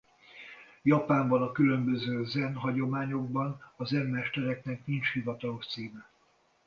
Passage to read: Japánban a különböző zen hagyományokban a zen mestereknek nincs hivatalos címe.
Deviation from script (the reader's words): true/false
false